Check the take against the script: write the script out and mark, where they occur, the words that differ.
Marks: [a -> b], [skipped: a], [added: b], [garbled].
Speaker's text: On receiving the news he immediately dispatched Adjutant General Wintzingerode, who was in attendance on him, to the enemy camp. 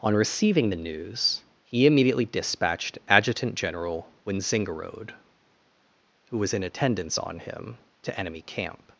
On receiving the news he immediately dispatched Adjutant General Wintzingerode, who was in attendance on him, to [skipped: the] enemy camp.